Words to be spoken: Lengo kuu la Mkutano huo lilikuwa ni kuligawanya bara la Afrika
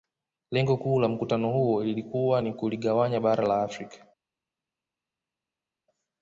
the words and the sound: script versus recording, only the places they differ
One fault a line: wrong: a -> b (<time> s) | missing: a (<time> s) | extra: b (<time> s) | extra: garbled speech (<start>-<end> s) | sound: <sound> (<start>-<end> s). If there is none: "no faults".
no faults